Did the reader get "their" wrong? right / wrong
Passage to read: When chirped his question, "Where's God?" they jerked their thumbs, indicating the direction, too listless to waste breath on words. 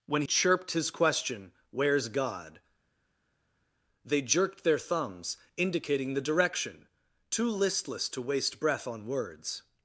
right